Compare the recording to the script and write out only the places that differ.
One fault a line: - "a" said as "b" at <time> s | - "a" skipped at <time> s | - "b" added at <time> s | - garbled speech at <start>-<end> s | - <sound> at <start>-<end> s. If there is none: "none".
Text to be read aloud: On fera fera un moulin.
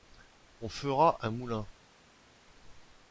- "fera" skipped at 1.2 s